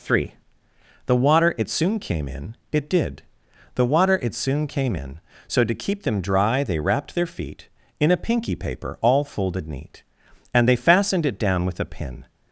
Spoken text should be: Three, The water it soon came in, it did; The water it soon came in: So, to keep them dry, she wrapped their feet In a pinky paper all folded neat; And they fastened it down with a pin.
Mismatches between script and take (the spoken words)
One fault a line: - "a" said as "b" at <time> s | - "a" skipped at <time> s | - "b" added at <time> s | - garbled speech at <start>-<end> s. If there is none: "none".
- "she" said as "they" at 6.6 s